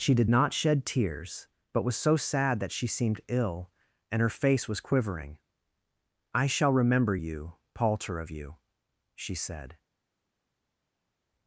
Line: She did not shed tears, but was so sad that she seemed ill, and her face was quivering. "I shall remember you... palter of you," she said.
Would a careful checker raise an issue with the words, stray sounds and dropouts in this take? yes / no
no